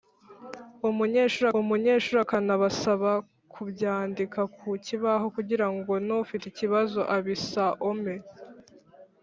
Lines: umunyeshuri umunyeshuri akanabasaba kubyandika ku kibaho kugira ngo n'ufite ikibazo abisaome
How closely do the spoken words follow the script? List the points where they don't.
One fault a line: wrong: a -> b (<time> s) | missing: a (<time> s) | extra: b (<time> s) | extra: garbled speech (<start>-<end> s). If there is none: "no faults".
no faults